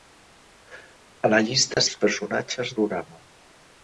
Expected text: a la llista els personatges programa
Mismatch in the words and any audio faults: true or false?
true